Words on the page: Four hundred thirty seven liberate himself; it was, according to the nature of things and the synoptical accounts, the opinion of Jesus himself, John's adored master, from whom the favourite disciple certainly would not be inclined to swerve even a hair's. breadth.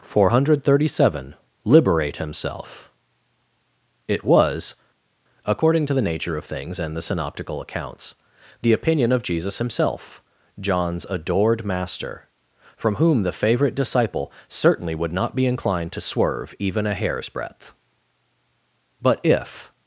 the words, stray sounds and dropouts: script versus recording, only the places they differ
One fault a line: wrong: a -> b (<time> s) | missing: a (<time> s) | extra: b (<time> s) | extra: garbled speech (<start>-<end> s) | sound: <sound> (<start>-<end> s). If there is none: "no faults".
extra: But if (19.0 s)